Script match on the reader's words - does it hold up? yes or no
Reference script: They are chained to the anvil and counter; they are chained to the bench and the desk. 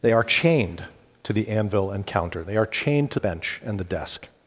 no